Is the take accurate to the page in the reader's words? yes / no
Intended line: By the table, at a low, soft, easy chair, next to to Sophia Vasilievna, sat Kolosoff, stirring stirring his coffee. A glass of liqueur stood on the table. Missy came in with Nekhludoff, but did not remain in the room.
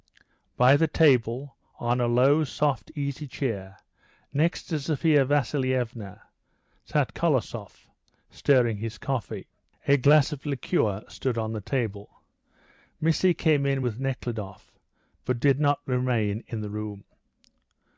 no